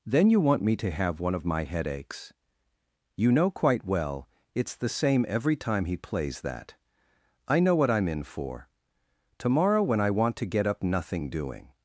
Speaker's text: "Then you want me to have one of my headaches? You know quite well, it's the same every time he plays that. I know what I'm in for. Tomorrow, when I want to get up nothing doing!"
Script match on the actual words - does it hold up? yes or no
yes